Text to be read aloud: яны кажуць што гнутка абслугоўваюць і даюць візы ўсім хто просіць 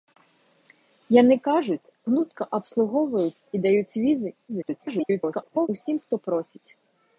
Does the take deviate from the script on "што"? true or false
true